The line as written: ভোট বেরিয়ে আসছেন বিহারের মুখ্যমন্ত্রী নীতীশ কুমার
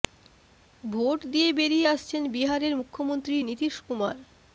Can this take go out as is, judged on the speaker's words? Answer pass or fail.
fail